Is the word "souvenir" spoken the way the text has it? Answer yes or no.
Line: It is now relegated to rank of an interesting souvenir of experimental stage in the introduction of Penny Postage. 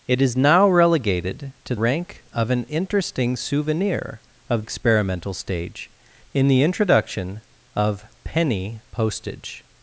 yes